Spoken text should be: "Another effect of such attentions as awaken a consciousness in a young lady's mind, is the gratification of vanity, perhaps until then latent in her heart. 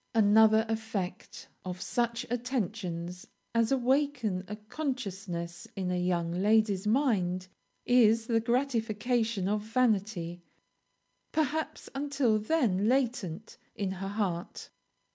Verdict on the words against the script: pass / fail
pass